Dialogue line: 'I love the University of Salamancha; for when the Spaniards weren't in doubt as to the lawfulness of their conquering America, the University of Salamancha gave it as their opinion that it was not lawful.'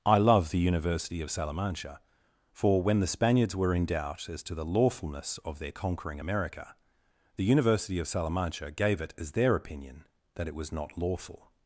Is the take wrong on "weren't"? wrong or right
wrong